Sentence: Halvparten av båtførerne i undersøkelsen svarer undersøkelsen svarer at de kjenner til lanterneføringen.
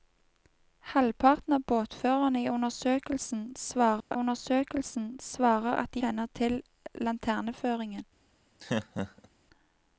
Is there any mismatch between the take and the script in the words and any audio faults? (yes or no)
yes